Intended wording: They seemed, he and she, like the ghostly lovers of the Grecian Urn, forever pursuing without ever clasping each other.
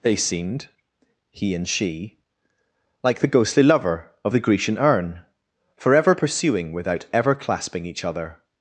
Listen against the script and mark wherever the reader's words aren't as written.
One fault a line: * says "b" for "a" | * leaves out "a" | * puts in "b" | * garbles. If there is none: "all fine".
* says "lover" for "lovers"